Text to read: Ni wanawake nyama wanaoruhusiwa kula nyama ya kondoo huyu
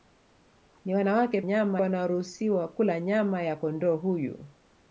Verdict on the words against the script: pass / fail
pass